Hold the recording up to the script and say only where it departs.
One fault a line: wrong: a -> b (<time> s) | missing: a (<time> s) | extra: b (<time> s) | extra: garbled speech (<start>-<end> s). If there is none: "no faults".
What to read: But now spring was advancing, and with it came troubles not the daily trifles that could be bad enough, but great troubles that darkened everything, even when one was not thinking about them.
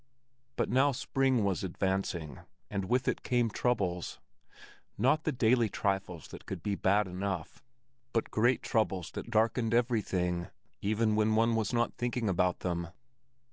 no faults